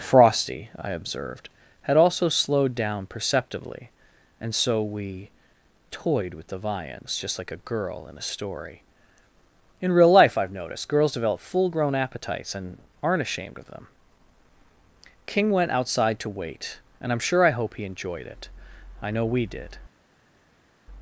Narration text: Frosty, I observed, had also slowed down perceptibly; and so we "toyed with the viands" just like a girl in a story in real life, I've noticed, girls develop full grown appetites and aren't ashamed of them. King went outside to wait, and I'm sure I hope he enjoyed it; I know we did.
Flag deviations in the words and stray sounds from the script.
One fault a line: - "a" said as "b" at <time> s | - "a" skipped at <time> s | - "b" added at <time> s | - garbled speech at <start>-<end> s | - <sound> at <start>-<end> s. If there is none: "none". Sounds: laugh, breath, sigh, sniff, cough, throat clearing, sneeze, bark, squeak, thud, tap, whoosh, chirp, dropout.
none